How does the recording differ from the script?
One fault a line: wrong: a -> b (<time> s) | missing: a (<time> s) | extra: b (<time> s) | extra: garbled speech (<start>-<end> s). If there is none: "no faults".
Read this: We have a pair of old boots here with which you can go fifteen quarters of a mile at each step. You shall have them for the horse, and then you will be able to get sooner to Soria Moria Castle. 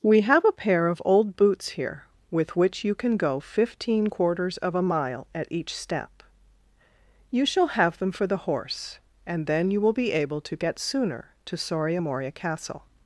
no faults